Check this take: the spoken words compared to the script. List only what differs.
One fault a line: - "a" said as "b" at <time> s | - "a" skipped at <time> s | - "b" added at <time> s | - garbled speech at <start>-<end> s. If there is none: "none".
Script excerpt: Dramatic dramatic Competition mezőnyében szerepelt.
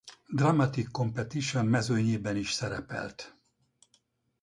- "dramatic" skipped at 0.9 s
- "is" added at 2.4 s